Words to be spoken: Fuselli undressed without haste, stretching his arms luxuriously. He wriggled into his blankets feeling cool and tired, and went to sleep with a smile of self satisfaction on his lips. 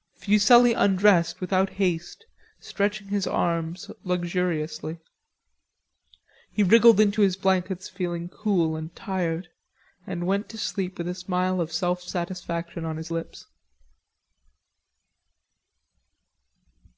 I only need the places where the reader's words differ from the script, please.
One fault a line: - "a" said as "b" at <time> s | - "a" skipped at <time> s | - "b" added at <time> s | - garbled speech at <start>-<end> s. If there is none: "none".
none